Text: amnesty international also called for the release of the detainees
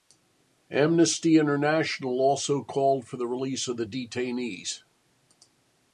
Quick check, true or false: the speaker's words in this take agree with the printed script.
true